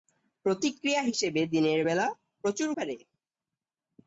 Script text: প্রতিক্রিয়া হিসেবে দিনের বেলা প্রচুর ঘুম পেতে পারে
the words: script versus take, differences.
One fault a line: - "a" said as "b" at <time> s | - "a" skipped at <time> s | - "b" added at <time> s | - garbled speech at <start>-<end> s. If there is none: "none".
- "ঘুম পেতে" skipped at 2.7 s